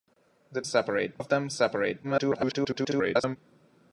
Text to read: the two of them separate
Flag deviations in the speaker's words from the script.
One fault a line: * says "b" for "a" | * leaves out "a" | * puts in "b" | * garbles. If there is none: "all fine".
* says "separate" for "two"
* garbles